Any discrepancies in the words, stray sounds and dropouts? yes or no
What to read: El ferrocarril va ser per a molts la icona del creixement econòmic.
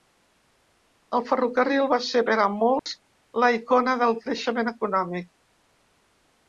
yes